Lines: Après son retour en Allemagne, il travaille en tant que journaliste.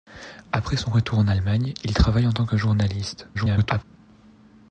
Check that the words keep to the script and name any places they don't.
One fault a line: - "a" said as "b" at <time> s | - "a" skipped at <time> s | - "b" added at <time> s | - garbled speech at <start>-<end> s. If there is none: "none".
- garbled speech at 3.3-3.8 s